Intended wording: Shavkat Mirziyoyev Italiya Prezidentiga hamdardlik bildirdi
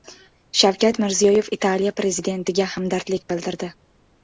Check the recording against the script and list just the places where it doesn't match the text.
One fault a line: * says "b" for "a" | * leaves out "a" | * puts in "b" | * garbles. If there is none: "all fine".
all fine